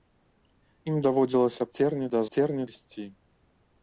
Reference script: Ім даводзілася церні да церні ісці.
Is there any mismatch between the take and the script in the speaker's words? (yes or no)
no